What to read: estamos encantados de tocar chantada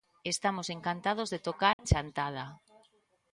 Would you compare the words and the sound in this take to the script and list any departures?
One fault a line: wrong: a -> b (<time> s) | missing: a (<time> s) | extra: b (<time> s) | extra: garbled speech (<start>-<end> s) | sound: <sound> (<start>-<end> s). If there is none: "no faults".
sound: dropout (1.7-1.8 s)